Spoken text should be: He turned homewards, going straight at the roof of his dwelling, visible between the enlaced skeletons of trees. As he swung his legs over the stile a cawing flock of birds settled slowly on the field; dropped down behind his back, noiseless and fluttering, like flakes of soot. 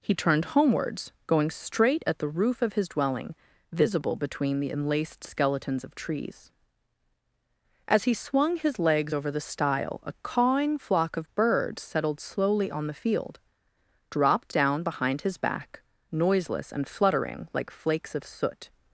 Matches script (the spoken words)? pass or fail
pass